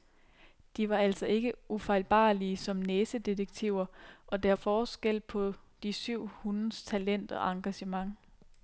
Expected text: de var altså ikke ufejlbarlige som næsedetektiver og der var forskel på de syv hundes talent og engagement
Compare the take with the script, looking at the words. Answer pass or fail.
fail